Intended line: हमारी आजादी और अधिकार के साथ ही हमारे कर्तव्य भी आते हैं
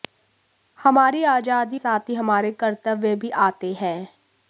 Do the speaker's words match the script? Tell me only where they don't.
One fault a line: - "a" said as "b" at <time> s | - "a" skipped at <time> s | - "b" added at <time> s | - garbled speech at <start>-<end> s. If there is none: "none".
- "और अधिकार के" skipped at 1.8 s